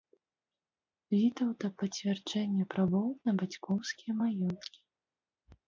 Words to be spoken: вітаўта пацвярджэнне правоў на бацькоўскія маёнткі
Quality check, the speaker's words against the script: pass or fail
pass